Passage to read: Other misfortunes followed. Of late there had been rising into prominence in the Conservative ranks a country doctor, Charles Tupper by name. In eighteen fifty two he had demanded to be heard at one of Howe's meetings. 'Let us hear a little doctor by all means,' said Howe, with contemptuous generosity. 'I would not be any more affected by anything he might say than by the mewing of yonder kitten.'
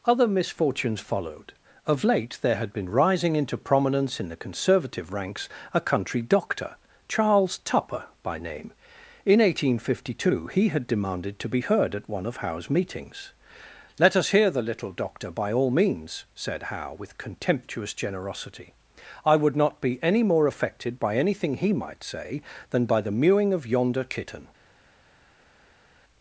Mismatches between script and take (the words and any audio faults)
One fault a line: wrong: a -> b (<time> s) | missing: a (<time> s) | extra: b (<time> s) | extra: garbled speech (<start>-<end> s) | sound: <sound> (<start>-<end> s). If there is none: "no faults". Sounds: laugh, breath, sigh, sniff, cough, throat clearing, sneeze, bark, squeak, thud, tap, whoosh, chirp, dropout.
wrong: a -> the (14.5 s)